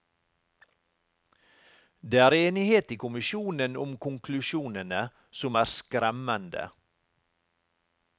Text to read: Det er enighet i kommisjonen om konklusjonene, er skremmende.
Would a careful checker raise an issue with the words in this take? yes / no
yes